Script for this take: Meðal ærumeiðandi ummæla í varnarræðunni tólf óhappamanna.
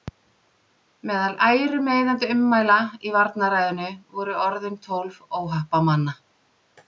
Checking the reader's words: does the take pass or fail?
fail